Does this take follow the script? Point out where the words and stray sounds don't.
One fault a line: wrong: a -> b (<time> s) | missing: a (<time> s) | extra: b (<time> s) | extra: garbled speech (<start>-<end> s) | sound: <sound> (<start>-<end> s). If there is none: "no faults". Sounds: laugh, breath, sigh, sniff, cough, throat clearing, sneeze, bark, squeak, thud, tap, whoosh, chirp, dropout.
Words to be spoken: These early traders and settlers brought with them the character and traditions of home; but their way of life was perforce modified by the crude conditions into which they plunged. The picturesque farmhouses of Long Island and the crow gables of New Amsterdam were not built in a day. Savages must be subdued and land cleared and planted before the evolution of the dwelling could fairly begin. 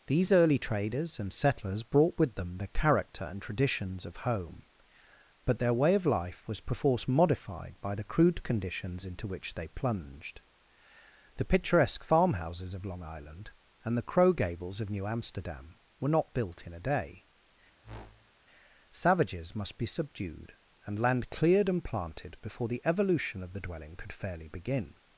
sound: whoosh (17.8-18.3 s)